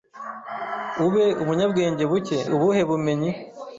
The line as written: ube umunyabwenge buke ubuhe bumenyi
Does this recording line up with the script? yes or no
yes